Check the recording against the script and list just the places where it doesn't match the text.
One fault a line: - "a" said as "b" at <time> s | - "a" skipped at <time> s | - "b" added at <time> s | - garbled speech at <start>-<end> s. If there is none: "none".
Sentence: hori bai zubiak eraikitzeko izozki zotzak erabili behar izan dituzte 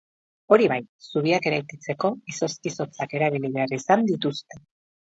none